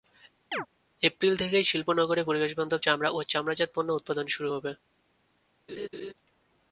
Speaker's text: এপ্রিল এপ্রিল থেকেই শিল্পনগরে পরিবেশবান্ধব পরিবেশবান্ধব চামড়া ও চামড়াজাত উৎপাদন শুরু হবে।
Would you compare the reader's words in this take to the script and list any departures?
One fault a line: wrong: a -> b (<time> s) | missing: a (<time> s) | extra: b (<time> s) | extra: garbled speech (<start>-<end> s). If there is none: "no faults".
missing: এপ্রিল (1.3 s)
missing: পরিবেশবান্ধব (2.8 s)
extra: পণ্য (3.7 s)